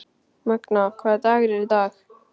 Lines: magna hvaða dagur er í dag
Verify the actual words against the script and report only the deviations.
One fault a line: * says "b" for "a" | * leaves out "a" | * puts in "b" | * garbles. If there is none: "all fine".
all fine